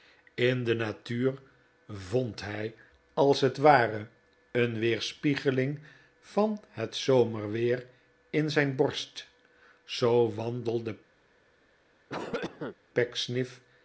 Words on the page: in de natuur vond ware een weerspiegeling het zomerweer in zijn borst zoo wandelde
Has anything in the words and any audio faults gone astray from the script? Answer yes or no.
yes